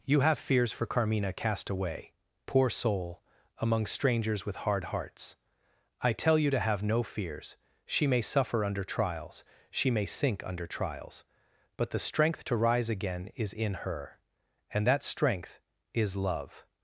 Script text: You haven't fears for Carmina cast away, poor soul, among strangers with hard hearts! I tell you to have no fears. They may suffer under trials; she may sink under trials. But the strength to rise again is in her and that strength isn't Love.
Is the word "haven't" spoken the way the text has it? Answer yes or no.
no